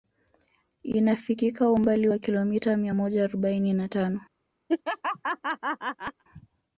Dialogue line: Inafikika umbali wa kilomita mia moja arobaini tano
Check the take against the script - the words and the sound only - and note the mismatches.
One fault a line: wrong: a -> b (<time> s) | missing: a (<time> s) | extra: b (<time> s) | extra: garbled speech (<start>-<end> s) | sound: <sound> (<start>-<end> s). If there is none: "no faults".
extra: na (3.7 s)
sound: laugh (4.7-6.2 s)